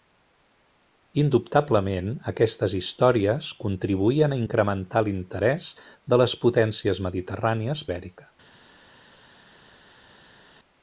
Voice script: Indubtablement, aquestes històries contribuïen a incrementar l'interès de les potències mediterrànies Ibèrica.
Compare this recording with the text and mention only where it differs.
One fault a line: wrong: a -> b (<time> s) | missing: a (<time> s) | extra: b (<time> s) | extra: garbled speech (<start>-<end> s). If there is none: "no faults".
no faults